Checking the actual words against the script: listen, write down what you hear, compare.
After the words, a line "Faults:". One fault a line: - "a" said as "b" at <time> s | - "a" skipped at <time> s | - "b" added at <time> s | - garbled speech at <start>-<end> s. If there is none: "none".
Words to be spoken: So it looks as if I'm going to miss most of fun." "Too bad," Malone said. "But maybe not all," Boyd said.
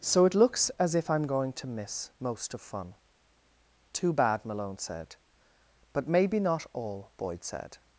So it looks as if I'm going to miss most of fun." "Too bad," Malone said. "But maybe not all," Boyd said.
Faults:
none